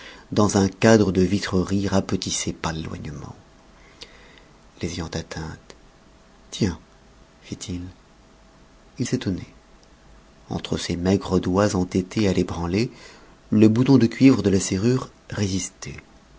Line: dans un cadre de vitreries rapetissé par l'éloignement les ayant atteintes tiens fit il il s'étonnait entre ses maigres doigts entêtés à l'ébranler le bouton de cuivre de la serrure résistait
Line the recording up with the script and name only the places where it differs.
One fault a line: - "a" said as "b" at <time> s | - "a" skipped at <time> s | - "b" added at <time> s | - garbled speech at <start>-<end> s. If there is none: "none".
none